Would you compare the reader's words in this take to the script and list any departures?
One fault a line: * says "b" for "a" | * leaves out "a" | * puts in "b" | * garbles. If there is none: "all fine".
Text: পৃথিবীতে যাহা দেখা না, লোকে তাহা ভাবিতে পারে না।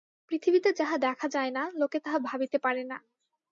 * puts in "যায়"